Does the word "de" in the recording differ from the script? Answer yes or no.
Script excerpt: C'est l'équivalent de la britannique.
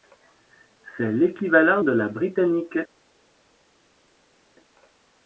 no